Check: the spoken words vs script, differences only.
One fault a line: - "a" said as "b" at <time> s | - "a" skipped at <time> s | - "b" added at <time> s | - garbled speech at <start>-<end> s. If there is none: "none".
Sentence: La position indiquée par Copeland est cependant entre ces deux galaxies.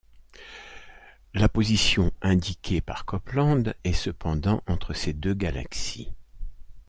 none